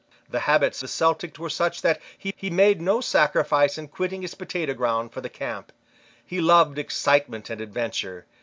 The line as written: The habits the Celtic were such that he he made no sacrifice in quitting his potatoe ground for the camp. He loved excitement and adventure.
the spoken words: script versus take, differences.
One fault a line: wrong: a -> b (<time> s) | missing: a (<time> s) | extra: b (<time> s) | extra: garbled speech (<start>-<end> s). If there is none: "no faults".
no faults